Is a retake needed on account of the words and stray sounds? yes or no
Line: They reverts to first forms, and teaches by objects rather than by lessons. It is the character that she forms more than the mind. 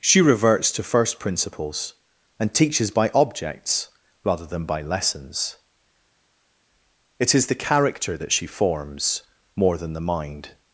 yes